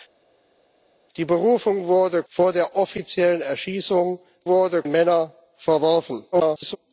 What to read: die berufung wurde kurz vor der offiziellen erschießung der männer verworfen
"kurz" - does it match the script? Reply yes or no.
no